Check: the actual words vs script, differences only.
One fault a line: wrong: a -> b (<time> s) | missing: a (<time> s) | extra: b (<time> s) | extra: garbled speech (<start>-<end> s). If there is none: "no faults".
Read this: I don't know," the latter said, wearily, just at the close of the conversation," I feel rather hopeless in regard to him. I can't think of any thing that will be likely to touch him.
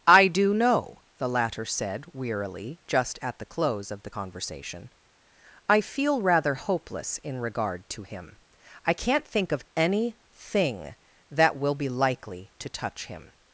wrong: don't -> do (0.3 s)